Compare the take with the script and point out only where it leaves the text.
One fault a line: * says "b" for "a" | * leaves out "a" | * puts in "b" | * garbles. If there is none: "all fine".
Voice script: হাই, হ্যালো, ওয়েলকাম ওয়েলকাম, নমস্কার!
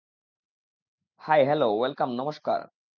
* leaves out "ওয়েলকাম"